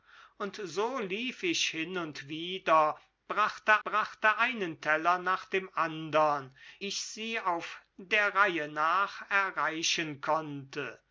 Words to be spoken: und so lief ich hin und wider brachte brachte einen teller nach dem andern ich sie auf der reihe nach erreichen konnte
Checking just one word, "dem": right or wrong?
right